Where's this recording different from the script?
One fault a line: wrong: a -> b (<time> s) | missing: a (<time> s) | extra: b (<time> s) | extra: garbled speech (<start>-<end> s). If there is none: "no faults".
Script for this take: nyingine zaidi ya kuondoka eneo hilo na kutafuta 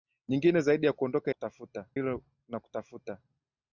wrong: eneo -> kutafuta (1.3 s)